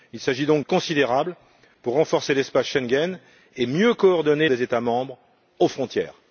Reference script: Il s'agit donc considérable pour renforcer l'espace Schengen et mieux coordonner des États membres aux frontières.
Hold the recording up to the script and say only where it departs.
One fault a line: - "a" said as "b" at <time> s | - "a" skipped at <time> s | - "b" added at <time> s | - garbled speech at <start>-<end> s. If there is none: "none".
none